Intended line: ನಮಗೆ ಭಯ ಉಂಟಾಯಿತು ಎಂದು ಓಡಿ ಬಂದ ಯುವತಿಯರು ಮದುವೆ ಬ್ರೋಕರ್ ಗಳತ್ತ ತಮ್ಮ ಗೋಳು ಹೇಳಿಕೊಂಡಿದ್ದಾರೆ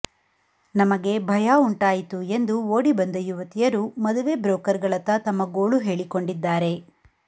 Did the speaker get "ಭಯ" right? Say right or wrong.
right